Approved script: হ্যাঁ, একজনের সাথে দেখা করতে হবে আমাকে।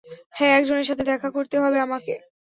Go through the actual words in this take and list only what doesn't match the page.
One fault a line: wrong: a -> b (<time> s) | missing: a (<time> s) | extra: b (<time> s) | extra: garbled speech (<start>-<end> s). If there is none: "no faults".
no faults